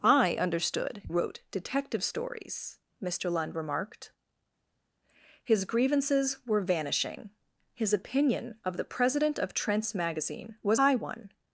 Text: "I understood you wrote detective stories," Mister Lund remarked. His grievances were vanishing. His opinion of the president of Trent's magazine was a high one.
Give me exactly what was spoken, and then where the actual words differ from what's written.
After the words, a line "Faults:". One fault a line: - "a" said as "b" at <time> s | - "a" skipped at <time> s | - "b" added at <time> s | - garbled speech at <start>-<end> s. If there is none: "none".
"I understood wrote detective stories," Mister Lund remarked. His grievances were vanishing. His opinion of the president of Trent's magazine was high one.
Faults:
- "you" skipped at 1.0 s
- "a" skipped at 10.8 s